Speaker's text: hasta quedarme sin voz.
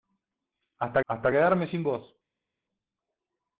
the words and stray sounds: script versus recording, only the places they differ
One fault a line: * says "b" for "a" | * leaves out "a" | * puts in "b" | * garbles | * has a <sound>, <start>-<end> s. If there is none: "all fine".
* puts in "hasta"